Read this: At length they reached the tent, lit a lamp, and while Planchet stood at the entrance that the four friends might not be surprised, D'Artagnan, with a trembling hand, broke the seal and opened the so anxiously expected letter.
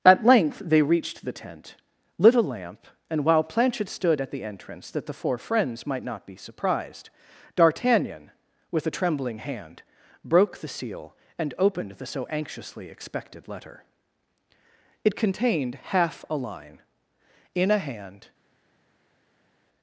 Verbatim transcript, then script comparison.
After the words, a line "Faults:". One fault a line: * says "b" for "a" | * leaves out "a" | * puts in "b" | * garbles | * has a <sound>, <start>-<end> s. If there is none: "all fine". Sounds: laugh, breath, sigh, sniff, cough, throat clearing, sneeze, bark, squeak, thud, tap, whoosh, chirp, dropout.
At length they reached the tent, lit a lamp, and while Planchet stood at the entrance that the four friends might not be surprised, D'Artagnan, with a trembling hand, broke the seal and opened the so anxiously expected letter. It contained half a line, in a hand
Faults:
* puts in "It contained half a line in a hand"